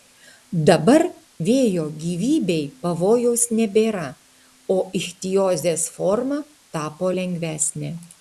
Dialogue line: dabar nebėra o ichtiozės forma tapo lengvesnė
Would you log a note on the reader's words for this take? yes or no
yes